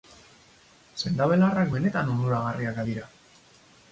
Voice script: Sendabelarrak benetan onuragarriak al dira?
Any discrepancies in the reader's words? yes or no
no